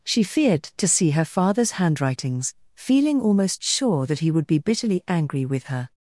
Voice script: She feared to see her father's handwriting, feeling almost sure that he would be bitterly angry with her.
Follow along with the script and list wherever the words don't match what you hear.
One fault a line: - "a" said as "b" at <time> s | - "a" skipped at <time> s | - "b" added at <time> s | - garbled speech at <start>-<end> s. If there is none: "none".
- "handwriting" said as "handwritings" at 1.7 s